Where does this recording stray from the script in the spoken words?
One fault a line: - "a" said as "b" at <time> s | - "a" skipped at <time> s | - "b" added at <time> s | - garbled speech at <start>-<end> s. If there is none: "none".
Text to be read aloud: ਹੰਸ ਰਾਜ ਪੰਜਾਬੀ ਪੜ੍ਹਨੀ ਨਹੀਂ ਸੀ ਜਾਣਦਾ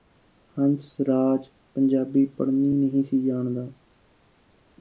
none